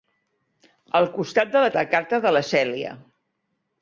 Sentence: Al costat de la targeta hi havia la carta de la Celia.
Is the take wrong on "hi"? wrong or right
wrong